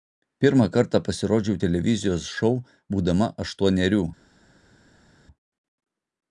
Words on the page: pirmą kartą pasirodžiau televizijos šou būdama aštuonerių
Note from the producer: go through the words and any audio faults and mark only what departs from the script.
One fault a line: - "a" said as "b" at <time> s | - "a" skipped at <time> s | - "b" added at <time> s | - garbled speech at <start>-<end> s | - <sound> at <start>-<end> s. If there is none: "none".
none